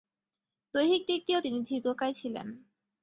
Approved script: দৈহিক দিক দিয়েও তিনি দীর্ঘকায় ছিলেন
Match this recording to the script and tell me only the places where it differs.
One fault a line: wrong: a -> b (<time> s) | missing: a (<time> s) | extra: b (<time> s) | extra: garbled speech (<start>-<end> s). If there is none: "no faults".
no faults